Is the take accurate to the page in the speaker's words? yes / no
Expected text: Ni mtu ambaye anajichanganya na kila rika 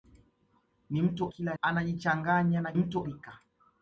no